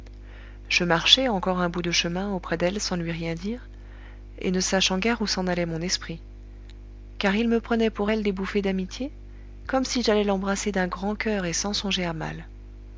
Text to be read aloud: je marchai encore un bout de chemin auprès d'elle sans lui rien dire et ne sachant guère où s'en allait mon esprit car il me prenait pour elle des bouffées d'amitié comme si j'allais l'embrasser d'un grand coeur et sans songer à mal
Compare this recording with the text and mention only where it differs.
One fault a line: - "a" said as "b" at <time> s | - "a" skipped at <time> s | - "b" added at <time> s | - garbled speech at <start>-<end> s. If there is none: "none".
none